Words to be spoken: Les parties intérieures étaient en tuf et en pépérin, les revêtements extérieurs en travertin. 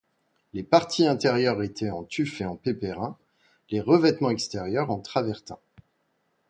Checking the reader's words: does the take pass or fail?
pass